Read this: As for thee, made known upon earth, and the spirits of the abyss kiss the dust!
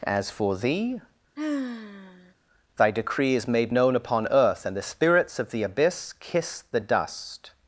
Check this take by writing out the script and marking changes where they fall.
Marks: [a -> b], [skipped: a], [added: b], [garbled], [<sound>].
As for thee, [sigh] [added: thy decree is] made known upon earth, and the spirits of the abyss kiss the dust!